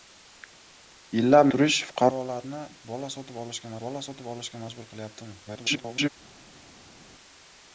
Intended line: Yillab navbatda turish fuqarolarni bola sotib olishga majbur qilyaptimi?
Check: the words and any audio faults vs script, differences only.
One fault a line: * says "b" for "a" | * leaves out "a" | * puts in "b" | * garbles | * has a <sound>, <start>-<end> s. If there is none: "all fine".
* leaves out "navbatda"
* puts in "bola sotib olishga"
* garbles